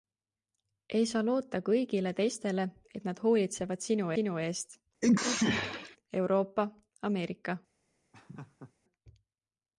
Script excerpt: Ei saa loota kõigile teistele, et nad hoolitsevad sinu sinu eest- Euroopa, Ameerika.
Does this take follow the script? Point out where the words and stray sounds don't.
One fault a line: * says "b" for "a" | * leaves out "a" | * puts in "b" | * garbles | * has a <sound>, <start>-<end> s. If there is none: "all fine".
* has a sneeze, 5.0-6.0 s
* has a laugh, 8.1-8.7 s